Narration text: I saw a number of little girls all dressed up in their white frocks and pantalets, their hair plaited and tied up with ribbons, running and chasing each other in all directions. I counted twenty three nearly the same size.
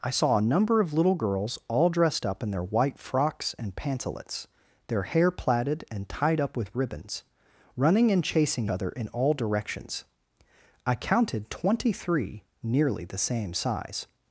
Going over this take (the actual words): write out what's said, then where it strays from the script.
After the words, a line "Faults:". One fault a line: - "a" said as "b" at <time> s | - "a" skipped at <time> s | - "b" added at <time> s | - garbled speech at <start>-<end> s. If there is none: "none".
I saw a number of little girls all dressed up in their white frocks and pantalets, their hair plaited and tied up with ribbons, running and chasing other in all directions. I counted twenty three nearly the same size.
Faults:
- "each" skipped at 8.7 s